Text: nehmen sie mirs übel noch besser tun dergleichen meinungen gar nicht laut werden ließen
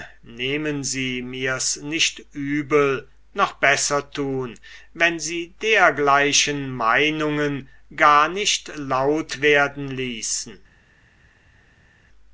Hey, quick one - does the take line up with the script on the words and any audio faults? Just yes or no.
no